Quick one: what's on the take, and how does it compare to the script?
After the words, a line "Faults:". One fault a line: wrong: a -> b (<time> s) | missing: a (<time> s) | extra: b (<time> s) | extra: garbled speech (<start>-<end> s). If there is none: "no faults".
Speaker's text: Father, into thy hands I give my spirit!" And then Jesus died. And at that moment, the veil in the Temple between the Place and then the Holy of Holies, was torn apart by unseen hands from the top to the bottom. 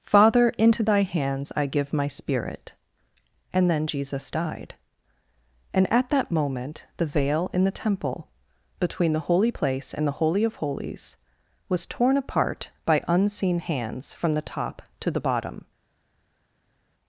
Father, into thy hands I give my spirit!" And then Jesus died. And at that moment, the veil in the Temple between the Holy Place and the Holy of Holies, was torn apart by unseen hands from the top to the bottom.
Faults:
extra: Holy (9.2 s)
missing: then (10.1 s)